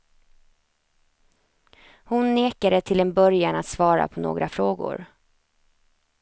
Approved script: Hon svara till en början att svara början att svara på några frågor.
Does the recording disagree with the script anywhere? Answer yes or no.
yes